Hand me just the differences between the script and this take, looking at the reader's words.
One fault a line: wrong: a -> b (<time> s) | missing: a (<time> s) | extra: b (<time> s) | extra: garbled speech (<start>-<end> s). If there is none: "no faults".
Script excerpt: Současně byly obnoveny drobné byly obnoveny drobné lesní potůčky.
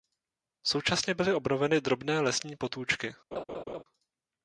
missing: byly obnoveny drobné (2.2 s)